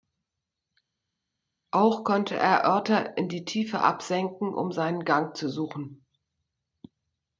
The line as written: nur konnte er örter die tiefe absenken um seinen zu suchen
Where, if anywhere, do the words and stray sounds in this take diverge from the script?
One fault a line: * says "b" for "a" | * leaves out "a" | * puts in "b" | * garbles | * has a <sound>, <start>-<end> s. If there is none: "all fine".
* says "auch" for "nur"
* puts in "in"
* puts in "gang"